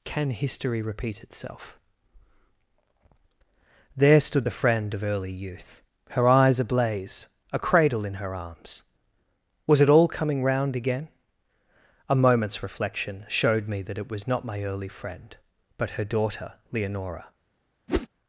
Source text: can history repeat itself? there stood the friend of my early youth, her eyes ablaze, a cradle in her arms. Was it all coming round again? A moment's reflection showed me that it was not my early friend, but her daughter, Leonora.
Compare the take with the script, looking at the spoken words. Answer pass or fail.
fail